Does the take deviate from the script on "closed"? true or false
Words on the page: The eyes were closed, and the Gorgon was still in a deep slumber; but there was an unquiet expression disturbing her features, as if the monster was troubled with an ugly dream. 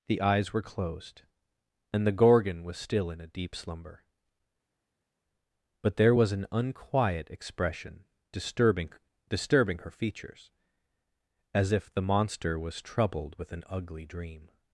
false